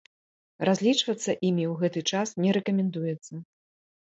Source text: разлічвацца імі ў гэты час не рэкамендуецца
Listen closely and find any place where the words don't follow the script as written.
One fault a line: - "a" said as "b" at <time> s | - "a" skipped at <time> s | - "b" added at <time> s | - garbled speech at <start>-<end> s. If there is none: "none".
none